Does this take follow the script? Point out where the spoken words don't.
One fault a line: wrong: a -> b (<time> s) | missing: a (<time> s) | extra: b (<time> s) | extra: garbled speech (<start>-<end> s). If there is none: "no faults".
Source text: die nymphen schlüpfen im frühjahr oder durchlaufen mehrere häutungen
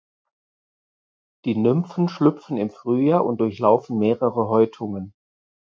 wrong: oder -> und (3.3 s)